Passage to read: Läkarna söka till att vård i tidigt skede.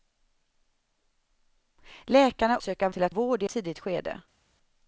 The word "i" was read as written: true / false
true